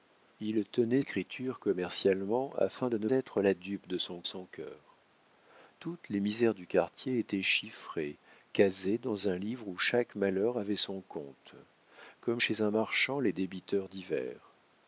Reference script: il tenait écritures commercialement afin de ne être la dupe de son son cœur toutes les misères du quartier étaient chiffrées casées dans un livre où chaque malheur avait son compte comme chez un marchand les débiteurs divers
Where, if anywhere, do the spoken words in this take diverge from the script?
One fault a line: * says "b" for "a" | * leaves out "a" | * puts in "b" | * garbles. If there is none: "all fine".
all fine